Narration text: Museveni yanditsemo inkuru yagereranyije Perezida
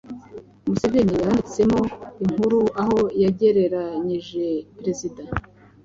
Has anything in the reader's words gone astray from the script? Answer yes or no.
yes